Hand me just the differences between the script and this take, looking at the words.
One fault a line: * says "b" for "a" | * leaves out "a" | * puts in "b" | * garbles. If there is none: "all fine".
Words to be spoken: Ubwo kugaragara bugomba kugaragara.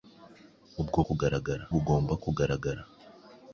all fine